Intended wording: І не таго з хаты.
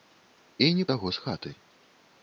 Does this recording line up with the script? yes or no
yes